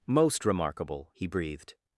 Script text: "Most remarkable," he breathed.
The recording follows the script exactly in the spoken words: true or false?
true